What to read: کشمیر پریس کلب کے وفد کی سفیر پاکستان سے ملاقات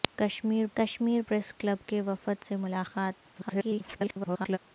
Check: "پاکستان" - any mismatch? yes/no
yes